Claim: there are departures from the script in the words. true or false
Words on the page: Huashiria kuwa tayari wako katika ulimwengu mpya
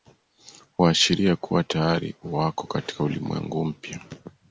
false